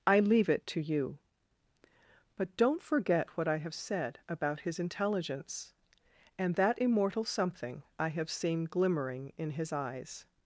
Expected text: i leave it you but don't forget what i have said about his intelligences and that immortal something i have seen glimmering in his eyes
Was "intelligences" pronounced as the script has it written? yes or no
no